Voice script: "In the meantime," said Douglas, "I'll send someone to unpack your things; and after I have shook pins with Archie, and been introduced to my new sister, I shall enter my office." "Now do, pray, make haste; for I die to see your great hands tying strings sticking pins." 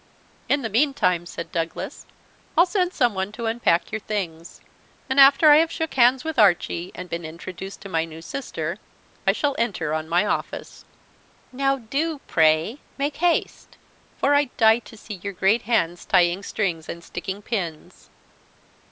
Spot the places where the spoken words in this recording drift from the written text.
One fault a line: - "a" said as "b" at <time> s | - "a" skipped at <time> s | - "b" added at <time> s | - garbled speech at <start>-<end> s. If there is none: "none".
- "pins" said as "hands" at 5.9 s
- "on" added at 9.9 s
- "and" added at 16.9 s